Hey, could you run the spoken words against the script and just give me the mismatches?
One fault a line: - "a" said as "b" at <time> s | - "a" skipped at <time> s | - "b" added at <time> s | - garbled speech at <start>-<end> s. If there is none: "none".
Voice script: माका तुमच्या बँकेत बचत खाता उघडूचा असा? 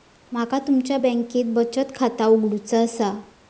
none